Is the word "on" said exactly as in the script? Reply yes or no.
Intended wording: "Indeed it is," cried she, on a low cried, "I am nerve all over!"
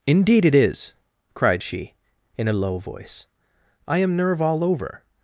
no